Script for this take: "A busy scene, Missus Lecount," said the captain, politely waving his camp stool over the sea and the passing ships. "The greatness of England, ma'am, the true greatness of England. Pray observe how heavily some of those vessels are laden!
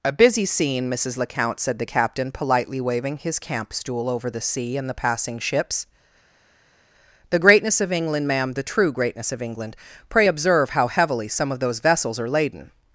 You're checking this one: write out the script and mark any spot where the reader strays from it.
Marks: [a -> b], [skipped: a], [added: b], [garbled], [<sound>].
"A busy scene, Missus Lecount," said the captain, politely waving his camp stool over the sea and the passing ships. "The greatness of England, ma'am, the true greatness of England. Pray observe how heavily some of those vessels are laden!